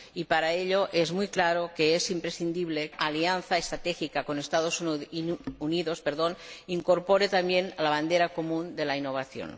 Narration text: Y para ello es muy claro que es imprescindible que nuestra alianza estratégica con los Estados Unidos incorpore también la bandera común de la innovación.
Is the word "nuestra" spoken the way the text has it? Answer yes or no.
no